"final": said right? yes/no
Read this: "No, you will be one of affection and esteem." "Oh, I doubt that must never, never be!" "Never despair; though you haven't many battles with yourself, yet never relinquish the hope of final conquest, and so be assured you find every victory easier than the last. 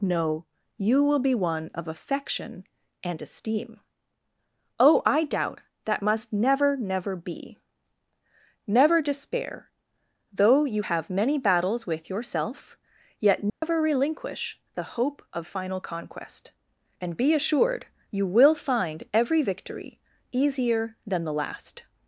yes